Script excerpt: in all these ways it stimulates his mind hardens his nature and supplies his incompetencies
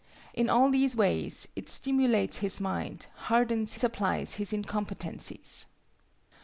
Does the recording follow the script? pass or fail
fail